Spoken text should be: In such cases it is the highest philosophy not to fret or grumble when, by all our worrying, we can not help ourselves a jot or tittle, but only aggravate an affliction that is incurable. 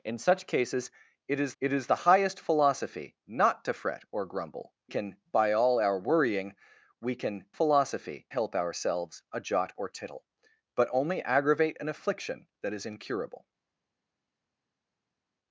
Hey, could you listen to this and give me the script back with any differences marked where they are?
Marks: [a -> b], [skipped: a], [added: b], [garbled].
In such cases it is [added: it is] the highest philosophy not to fret or grumble [when, -> can] by all our worrying, we can [not -> philosophy] help ourselves a jot or tittle, but only aggravate an affliction that is incurable.